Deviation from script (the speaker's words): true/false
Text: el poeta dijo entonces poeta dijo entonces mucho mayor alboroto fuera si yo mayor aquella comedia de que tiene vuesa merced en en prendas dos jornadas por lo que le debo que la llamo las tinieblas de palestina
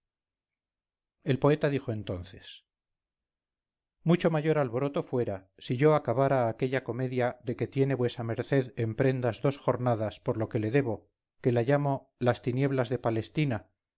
true